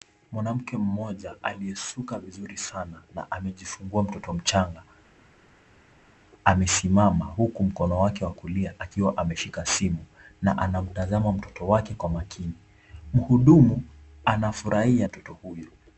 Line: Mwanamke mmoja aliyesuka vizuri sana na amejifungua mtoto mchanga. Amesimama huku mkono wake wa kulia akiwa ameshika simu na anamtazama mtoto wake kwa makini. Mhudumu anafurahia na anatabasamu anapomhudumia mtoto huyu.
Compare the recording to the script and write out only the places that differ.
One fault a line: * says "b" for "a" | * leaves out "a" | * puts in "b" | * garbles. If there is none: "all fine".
* leaves out "na anatabasamu anapomhudumia"